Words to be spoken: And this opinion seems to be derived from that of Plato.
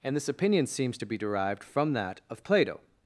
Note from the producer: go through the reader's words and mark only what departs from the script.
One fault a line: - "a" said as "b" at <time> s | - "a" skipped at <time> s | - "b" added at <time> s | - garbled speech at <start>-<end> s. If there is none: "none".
none